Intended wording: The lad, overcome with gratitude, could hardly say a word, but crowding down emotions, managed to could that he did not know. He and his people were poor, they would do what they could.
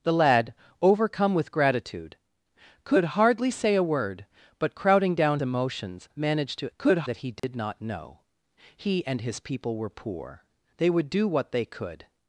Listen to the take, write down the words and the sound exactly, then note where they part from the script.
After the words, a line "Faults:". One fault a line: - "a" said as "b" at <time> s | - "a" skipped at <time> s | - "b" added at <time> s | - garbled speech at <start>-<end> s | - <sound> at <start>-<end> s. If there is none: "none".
The lad, overcome with gratitude, could hardly say a word, but crowding down emotions, managed to could that he did not know. He and his people were poor, they would do what they could.
Faults:
- dropout at 7.4-7.4 s